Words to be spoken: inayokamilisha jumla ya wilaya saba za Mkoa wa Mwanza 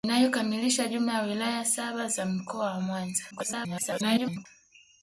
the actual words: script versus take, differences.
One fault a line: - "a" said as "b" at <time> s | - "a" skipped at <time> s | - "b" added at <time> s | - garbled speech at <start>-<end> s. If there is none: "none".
- garbled speech at 3.3-4.5 s